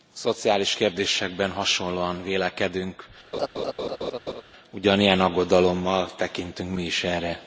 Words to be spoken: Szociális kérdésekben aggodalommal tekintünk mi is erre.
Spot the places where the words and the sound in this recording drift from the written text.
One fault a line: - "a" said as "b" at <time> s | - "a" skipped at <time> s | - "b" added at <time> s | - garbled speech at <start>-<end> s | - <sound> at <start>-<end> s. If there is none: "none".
- "hasonlóan vélekedünk ugyanilyen" added at 1.5 s
- laugh at 3.3-4.4 s